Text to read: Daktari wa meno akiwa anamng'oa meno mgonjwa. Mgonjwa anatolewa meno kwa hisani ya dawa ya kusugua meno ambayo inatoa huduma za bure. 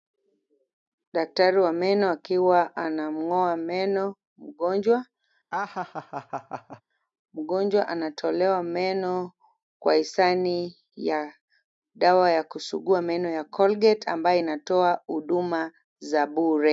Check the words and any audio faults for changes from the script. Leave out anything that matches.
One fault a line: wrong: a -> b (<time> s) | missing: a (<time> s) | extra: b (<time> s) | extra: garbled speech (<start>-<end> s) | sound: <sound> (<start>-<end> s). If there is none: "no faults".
sound: laugh (5.5-6.8 s)
extra: ya Colgate (13.3 s)